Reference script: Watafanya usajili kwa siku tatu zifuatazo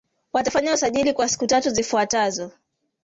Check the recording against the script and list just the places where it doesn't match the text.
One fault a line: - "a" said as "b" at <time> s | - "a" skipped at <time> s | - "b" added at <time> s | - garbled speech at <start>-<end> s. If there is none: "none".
none